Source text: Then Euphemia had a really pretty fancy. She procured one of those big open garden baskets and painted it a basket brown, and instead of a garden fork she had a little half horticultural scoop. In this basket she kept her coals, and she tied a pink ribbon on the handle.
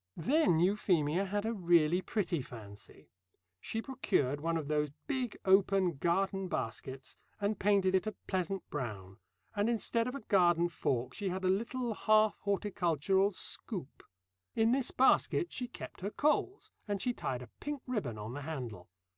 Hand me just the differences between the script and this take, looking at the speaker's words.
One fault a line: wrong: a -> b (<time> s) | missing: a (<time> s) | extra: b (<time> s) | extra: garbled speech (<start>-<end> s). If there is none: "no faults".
wrong: basket -> pleasant (8.3 s)